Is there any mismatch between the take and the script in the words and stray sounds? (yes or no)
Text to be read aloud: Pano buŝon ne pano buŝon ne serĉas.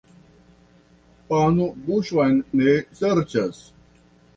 yes